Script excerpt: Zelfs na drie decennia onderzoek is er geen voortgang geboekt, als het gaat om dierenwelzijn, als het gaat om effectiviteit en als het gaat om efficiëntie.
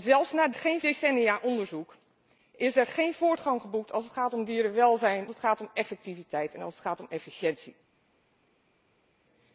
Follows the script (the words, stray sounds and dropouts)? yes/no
no